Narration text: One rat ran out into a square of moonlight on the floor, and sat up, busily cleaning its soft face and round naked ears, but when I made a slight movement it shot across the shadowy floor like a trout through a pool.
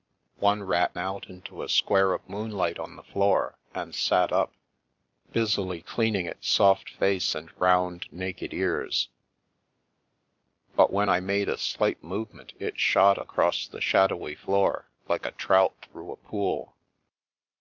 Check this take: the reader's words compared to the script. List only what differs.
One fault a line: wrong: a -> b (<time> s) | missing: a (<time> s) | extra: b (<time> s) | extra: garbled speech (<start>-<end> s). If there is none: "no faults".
missing: ran (0.9 s)